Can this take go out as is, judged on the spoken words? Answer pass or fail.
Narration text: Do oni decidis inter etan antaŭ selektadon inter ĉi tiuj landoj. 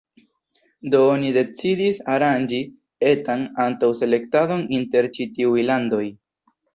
fail